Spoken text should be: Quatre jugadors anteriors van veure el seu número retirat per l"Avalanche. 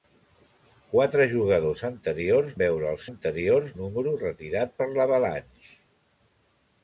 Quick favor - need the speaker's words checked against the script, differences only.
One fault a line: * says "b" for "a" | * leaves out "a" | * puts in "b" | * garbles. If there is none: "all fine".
* leaves out "van"
* says "anteriors" for "seu"